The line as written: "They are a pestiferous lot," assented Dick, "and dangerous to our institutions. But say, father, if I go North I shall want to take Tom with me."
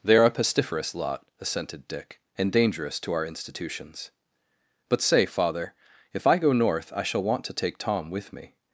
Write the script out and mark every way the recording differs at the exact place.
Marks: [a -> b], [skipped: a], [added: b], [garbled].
"They are a pestiferous lot," assented Dick, "and dangerous to our institutions. But say, father, if I go North I shall want to take Tom with me."